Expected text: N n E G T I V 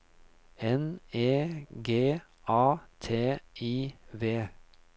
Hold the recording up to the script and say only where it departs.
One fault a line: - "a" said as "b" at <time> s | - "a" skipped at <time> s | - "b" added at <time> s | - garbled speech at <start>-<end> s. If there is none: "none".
- "n" skipped at 1.0 s
- "A" added at 2.5 s